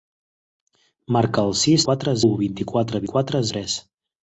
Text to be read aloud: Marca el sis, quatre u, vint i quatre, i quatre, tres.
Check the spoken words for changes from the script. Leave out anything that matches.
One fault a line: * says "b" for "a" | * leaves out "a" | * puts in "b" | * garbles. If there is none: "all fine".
all fine